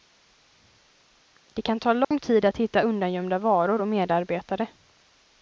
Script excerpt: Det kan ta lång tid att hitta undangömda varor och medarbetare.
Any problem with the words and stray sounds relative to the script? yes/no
yes